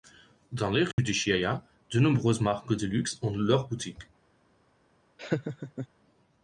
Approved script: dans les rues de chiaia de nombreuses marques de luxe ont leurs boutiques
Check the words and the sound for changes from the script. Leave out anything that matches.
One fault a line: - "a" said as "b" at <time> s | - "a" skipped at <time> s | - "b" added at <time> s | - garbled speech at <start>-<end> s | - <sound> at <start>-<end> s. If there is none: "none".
- dropout at 0.9-1.0 s
- laugh at 5.2-5.9 s